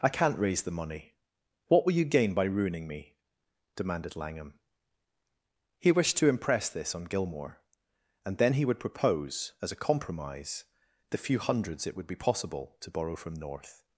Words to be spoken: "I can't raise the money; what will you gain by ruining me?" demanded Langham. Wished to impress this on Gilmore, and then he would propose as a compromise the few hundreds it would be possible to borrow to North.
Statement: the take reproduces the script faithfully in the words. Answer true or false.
false